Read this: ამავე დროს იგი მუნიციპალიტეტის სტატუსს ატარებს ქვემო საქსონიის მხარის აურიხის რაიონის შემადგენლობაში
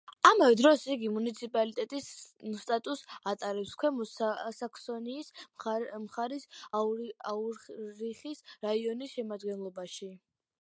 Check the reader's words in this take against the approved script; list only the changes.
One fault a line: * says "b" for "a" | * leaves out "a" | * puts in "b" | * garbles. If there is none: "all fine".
all fine